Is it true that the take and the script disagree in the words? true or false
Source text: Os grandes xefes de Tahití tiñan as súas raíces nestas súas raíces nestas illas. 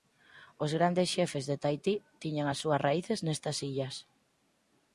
true